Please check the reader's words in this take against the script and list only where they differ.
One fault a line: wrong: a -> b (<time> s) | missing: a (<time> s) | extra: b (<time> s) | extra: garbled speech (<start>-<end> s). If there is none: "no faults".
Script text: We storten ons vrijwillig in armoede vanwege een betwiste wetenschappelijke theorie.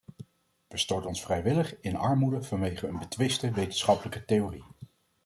no faults